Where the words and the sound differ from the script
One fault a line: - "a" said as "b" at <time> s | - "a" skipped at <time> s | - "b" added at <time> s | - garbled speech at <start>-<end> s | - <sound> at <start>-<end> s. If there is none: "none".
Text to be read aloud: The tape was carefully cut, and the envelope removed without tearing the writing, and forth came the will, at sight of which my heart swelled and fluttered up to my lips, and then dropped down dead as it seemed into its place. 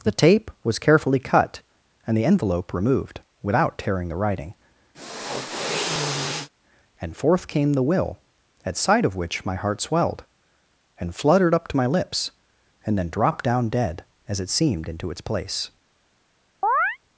- sniff at 4.9-6.5 s
- chirp at 16.6-17.0 s